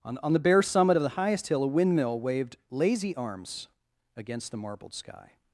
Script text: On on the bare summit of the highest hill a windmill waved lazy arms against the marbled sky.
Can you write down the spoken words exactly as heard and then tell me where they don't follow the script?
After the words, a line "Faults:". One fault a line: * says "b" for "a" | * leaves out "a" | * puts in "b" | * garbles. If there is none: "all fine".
On on the bare summit of the highest hill a windmill waved lazy arms against the marbled sky.
Faults:
all fine